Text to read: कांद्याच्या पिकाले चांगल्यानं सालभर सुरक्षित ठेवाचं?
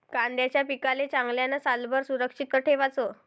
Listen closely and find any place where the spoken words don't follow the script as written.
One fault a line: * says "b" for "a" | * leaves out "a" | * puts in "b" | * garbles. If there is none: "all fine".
all fine